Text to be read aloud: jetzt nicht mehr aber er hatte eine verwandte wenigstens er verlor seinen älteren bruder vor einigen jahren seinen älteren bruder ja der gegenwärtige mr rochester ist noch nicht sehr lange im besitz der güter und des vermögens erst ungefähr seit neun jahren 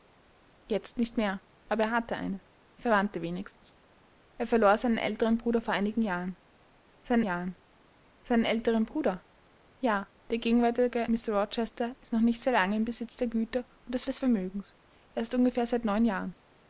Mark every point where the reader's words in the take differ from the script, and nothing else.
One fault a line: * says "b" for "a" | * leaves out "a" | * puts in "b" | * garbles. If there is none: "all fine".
* puts in "jahren seinen"
* puts in "des"